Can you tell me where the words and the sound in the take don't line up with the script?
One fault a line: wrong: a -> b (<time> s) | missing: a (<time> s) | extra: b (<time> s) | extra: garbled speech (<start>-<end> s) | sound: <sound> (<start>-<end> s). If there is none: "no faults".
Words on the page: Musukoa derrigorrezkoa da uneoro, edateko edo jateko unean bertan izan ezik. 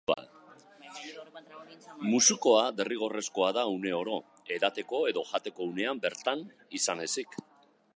no faults